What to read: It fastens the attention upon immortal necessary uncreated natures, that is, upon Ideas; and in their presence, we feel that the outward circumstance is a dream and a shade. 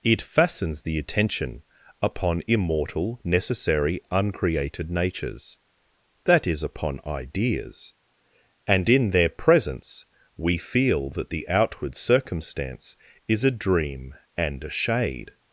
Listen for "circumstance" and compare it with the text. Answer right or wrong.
right